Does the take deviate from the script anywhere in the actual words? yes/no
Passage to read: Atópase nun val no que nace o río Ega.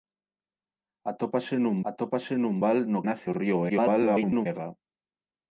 yes